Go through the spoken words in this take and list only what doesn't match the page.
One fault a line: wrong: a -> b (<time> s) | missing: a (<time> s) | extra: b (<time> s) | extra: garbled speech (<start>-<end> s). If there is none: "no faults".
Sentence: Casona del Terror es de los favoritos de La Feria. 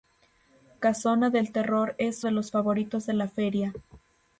no faults